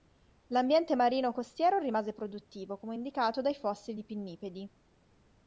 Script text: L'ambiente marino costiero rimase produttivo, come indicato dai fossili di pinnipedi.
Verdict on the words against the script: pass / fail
pass